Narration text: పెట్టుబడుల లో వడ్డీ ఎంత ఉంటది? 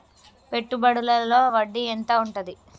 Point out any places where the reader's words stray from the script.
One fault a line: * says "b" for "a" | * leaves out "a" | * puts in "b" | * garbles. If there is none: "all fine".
all fine